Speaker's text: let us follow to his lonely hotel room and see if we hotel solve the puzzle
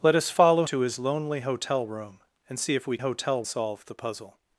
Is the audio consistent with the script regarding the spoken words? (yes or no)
yes